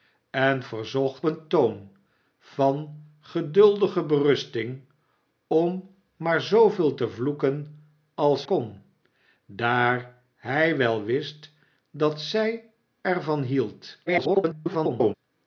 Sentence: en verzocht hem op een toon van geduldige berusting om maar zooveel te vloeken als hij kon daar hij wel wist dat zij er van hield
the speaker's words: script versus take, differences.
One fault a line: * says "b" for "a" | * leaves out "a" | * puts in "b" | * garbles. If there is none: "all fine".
* leaves out "hem op"
* leaves out "hij"
* garbles